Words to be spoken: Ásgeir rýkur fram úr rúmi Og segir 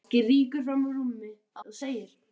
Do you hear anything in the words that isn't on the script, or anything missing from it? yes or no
no